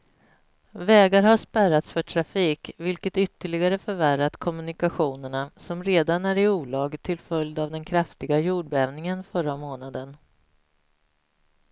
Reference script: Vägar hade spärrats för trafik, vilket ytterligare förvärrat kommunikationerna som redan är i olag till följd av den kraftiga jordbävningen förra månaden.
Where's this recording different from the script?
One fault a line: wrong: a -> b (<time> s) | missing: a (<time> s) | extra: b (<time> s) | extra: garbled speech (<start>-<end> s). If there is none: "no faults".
wrong: hade -> har (1.2 s)